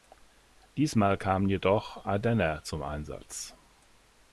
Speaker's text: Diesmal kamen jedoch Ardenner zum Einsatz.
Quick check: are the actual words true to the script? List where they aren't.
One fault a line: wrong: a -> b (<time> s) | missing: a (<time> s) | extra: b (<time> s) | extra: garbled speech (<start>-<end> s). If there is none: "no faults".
no faults